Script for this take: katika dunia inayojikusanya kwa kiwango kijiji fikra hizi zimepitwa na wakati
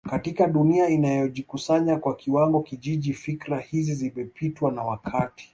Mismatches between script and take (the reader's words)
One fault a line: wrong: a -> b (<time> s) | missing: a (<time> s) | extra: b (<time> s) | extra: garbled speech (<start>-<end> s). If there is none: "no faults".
no faults